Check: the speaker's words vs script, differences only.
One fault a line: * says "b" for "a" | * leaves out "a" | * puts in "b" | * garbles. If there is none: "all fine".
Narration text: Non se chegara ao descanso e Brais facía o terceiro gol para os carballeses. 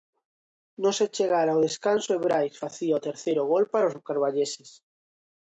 all fine